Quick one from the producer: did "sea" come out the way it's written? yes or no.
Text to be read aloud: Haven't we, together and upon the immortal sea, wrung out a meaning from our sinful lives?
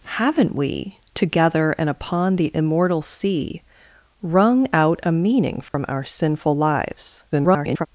yes